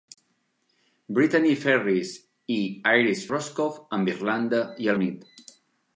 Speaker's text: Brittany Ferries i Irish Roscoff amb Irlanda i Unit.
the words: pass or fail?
pass